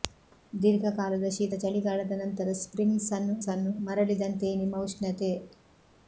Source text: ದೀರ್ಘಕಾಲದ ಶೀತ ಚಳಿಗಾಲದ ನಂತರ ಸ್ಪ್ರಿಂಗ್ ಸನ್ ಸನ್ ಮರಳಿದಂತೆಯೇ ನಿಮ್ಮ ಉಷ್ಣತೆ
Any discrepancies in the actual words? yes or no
no